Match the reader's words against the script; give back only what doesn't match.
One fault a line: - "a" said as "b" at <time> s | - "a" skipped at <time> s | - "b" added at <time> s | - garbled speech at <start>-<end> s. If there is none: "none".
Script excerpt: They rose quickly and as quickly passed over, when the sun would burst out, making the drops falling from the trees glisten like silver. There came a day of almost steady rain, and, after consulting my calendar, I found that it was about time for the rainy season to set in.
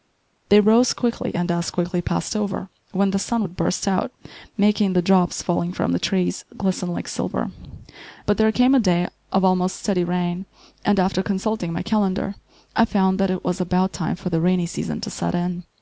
- "But" added at 8.2 s